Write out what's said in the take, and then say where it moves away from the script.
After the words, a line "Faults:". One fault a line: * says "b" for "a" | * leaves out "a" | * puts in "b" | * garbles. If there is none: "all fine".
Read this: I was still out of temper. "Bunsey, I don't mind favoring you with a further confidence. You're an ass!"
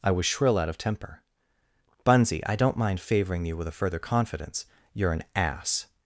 I was shrill out of temper. "Bunsey, I don't mind favoring you with a further confidence. You're an ass!"
Faults:
* says "shrill" for "still"